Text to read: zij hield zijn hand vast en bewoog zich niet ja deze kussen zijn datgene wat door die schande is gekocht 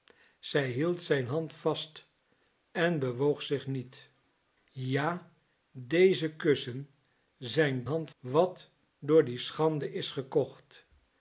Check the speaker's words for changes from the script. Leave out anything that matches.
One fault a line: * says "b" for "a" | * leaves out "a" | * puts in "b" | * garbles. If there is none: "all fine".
* says "hand" for "datgene"